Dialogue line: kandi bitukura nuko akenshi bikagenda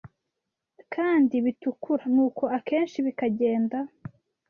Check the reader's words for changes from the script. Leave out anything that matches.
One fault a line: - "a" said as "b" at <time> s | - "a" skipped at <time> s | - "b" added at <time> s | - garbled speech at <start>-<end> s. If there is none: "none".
none